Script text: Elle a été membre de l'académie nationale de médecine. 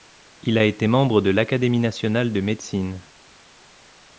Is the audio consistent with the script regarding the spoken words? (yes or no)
no